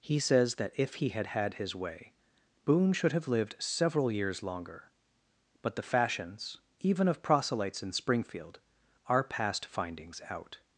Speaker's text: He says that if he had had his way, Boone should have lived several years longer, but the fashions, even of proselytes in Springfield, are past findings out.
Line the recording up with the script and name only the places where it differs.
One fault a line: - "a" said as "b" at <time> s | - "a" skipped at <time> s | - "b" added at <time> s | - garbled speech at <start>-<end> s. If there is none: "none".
none